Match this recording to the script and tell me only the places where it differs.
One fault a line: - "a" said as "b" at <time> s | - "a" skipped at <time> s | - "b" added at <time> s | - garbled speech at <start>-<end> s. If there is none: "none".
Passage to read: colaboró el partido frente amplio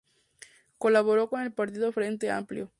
- "con" added at 1.3 s